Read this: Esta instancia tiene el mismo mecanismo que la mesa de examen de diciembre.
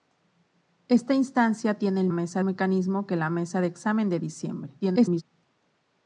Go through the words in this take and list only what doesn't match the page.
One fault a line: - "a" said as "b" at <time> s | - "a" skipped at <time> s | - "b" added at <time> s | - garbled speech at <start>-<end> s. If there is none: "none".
- "mismo" said as "mesa" at 2.1 s
- garbled speech at 4.8-5.2 s